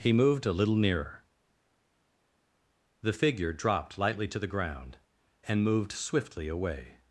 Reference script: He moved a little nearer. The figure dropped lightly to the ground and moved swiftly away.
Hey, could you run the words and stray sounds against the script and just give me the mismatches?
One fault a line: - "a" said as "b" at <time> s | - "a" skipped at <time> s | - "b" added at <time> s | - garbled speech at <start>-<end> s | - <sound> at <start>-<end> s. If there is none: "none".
none